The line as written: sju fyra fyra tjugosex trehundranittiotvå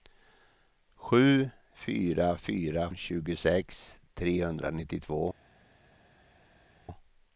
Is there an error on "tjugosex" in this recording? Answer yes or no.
no